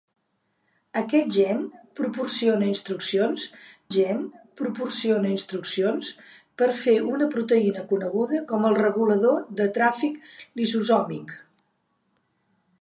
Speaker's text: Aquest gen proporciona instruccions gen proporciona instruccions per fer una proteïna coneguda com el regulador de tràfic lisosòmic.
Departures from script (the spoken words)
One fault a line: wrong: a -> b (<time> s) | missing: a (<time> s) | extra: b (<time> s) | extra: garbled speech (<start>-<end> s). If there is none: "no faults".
no faults